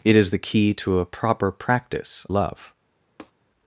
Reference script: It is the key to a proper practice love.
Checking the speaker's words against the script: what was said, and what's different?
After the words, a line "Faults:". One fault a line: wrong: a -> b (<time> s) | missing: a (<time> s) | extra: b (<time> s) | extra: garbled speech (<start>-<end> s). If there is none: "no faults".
It is the key to a proper practice love.
Faults:
no faults